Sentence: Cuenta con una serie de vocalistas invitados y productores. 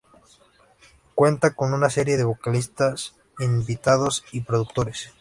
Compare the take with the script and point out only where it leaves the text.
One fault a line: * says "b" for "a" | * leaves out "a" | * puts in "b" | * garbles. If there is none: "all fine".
all fine